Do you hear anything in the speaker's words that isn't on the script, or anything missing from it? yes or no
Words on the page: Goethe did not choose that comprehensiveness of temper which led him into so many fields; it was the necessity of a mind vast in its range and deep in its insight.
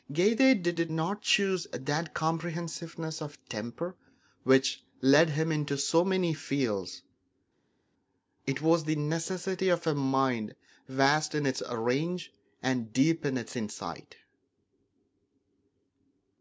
yes